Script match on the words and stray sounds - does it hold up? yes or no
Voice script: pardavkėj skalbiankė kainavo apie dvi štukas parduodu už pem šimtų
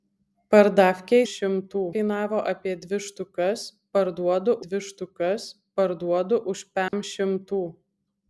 no